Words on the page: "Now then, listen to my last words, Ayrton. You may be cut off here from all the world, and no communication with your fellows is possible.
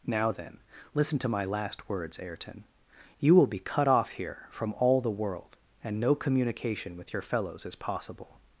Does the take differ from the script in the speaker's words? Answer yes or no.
yes